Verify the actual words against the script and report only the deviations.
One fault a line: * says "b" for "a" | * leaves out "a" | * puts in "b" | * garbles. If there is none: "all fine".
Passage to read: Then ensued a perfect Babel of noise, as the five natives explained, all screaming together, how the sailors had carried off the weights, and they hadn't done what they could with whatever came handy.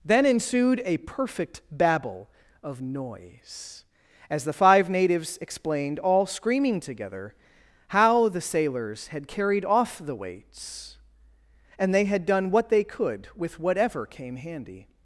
* says "had" for "hadn't"